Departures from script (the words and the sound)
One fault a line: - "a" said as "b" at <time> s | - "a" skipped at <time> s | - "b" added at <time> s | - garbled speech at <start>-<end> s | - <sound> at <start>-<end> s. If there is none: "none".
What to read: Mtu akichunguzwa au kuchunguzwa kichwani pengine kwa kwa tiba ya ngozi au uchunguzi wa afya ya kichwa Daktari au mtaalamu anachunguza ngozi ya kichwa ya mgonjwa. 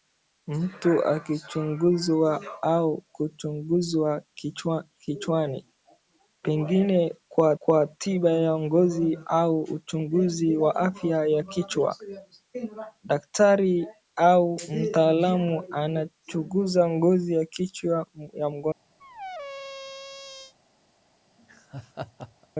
- squeak at 19.0-20.5 s
- laugh at 21.4-22.5 s